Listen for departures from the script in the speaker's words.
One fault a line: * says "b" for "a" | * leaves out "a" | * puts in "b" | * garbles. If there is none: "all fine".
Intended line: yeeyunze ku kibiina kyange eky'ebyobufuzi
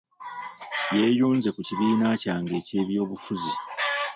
all fine